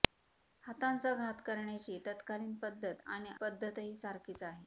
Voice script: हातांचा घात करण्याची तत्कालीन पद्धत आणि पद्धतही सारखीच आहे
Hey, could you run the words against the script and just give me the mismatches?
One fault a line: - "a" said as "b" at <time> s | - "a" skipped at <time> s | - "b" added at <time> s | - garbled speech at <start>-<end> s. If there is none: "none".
none